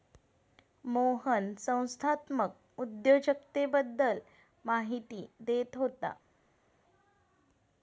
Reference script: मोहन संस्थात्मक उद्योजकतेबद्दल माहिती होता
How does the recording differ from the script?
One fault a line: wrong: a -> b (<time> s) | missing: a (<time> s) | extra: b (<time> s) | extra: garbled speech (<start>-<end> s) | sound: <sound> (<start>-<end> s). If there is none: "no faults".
extra: देत (5.4 s)